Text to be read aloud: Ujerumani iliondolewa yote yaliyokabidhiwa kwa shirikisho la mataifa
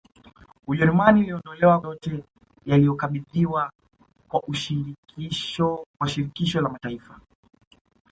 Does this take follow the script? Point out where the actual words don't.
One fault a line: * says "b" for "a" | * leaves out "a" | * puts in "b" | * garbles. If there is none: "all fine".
all fine